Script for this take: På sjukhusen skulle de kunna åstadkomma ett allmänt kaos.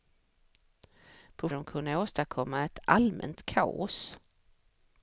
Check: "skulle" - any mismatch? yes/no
yes